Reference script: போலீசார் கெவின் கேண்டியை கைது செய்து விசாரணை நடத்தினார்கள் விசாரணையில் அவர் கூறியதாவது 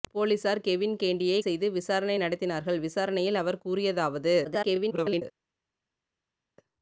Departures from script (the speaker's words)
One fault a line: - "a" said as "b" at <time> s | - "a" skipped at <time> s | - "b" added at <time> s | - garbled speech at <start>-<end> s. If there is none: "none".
- "கைது" skipped at 1.4 s
- garbled speech at 4.4-5.2 s